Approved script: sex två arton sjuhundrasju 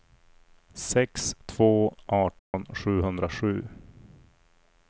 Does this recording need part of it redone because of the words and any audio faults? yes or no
yes